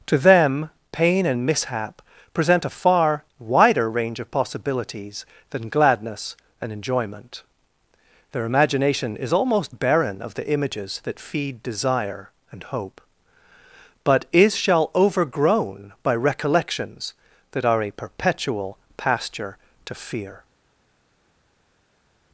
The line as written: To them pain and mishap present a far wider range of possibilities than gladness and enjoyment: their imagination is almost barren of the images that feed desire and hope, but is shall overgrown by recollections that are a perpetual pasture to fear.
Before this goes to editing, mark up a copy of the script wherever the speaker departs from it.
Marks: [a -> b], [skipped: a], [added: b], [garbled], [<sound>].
To them pain and mishap present a far wider range of possibilities than gladness and enjoyment: their imagination is almost barren of the images that feed desire and hope, but is shall overgrown by recollections that are a perpetual pasture to fear.